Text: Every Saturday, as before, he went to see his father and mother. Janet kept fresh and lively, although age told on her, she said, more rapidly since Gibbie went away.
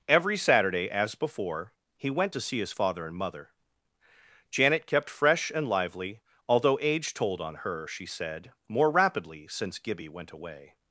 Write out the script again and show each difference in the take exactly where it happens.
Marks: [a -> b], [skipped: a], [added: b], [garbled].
Every Saturday, as before, he went to see his father and mother. Janet kept fresh and lively, although age told on her, she said, more rapidly since Gibbie went away.